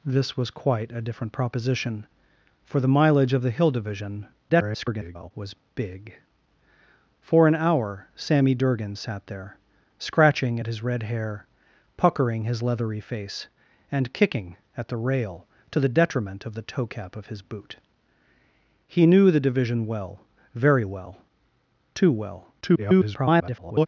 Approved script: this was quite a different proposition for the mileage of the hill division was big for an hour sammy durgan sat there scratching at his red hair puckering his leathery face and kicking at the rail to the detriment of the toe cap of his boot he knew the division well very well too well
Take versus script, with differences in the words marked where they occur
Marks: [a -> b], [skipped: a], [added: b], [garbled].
this was quite a different proposition for the mileage of the hill division [garbled] was big for an hour sammy durgan sat there scratching at his red hair puckering his leathery face and kicking at the rail to the detriment of the toe cap of his boot he knew the division well very well too well [garbled]